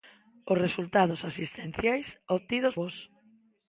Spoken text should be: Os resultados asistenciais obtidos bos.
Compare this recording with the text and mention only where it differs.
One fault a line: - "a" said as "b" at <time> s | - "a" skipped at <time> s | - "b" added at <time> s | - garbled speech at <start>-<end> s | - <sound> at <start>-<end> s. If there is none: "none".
none